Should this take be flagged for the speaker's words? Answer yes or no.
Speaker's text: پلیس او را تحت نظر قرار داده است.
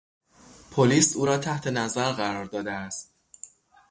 no